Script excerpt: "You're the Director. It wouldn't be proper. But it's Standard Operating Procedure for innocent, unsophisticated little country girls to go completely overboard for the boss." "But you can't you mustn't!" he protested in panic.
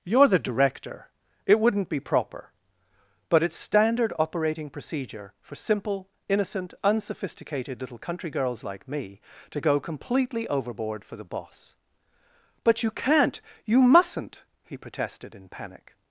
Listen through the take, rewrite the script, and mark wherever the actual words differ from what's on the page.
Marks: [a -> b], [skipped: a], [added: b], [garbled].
"You're the Director. It wouldn't be proper. But it's Standard Operating Procedure for [added: simple] innocent, unsophisticated little country girls [added: like me] to go completely overboard for the boss." "But you can't you mustn't!" he protested in panic.